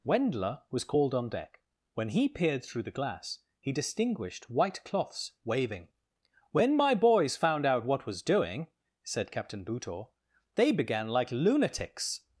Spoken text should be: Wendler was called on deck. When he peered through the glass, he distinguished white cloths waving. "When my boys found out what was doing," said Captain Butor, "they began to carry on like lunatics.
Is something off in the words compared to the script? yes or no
yes